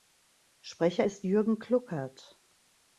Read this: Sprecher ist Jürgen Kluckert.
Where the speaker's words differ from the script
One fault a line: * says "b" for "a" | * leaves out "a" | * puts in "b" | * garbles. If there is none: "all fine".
all fine